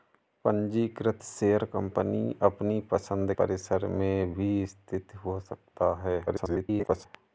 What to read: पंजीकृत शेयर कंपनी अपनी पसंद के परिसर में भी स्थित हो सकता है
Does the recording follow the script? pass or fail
fail